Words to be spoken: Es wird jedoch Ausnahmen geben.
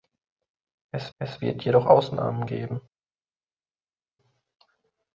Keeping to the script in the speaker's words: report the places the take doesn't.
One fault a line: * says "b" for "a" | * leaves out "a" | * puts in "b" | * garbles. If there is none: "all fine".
* puts in "es"